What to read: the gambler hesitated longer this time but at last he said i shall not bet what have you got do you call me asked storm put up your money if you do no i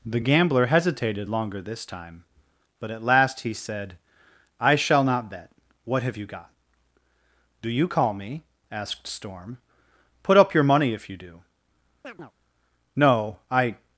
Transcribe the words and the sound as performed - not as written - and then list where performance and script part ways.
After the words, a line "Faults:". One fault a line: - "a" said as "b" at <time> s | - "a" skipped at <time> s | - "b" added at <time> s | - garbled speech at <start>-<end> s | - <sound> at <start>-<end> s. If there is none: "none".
the gambler hesitated longer this time but at last he said i shall not bet what have you got do you call me asked storm put up your money if you do no i
Faults:
- chirp at 12.0-12.3 s